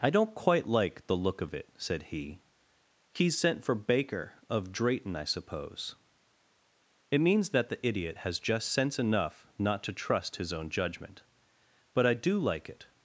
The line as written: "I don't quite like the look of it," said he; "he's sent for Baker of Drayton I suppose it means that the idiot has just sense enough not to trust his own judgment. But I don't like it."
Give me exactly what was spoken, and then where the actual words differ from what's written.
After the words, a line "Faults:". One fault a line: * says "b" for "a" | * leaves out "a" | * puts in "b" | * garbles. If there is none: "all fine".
"I don't quite like the look of it," said he; "he's sent for Baker of Drayton I suppose it means that the idiot has just sense enough not to trust his own judgment. But I do like it."
Faults:
* says "do" for "don't"